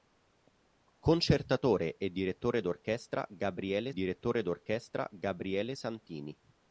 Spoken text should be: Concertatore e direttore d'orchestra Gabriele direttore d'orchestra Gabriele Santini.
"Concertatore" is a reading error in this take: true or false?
false